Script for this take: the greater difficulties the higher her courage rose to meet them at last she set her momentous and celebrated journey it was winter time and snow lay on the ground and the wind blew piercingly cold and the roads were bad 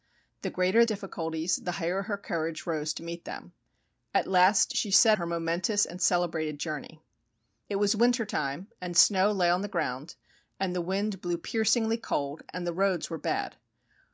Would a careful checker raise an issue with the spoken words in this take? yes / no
no